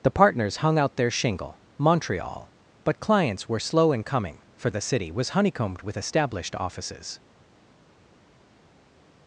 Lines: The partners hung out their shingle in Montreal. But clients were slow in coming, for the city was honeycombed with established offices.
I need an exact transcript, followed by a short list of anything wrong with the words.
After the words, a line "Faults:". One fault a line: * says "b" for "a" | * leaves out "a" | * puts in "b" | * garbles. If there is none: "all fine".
The partners hung out their shingle Montreal. But clients were slow in coming, for the city was honeycombed with established offices.
Faults:
* leaves out "in"